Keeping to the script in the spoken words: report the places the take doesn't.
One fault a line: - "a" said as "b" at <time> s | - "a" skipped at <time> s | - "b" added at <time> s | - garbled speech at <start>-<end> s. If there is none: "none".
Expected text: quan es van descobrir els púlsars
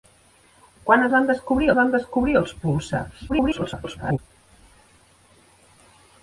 - "van descobrir" added at 1.8 s
- garbled speech at 3.3-4.2 s